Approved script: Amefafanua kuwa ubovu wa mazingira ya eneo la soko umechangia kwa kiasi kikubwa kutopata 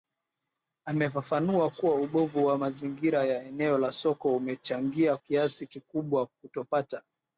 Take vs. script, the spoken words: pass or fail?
fail